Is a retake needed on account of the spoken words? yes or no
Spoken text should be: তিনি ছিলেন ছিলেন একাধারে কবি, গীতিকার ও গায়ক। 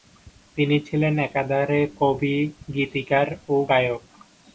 yes